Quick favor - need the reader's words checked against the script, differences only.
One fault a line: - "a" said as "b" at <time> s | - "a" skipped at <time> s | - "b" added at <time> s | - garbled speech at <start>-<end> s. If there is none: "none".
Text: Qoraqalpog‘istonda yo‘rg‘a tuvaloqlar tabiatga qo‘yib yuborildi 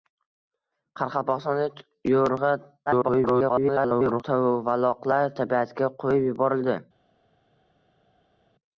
- garbled speech at 2.9-4.2 s